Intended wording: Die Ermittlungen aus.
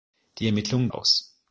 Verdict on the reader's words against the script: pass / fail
pass